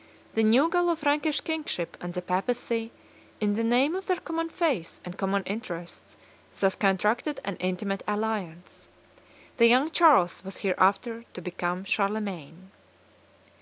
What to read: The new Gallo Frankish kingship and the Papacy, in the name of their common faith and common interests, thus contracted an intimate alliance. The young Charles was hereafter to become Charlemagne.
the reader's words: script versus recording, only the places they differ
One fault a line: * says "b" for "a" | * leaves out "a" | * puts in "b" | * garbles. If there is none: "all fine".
all fine